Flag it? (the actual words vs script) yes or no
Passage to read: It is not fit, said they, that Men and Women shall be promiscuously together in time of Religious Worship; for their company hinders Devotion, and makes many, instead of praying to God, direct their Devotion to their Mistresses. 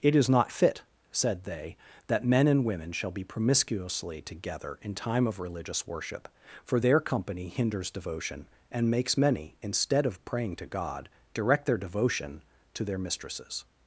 no